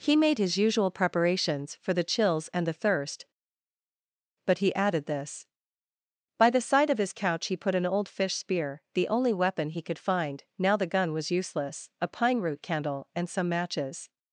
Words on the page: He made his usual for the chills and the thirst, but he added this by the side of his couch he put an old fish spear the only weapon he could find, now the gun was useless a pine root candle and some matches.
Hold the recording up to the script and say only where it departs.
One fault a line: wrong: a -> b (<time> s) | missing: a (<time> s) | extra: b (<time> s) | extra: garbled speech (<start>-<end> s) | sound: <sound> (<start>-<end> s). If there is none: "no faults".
extra: preparations (0.9 s)